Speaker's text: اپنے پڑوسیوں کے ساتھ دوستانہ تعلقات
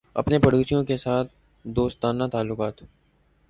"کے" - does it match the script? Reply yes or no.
yes